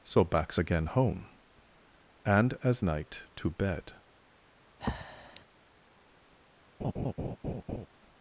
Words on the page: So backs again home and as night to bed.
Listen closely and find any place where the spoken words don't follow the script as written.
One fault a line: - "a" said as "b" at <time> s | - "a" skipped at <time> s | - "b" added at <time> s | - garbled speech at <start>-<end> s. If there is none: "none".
none